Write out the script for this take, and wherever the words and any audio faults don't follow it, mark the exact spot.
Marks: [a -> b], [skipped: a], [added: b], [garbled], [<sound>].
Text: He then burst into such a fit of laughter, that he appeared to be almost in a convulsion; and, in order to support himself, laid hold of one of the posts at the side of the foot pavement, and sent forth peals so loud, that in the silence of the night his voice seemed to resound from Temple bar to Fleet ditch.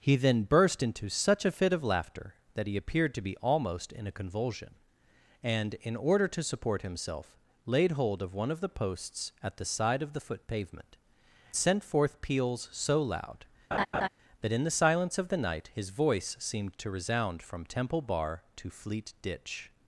He then burst into such a fit of laughter, that he appeared to be almost in a convulsion; and, in order to support himself, laid hold of one of the posts at the side of the foot pavement, [skipped: and] sent forth peals so loud, [laugh] that in the silence of the night his voice seemed to resound from Temple bar to Fleet ditch.